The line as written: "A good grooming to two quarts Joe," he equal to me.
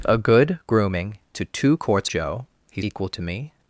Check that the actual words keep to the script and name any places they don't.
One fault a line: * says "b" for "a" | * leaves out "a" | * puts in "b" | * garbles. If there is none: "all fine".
all fine